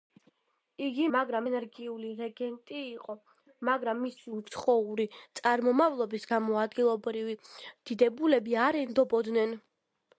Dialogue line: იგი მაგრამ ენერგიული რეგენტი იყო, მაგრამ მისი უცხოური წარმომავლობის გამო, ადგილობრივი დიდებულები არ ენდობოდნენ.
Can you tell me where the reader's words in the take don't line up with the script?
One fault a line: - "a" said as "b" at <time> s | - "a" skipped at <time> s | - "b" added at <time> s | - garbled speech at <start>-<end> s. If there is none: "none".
none